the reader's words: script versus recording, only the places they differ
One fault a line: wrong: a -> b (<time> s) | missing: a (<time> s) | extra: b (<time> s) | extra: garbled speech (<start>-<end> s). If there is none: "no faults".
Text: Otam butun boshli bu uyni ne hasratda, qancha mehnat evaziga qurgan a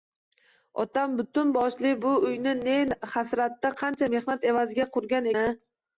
no faults